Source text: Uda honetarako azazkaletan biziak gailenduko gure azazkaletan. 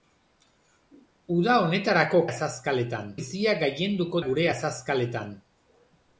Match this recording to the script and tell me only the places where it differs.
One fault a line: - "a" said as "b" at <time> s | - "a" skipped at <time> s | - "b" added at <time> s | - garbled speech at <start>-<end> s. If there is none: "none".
none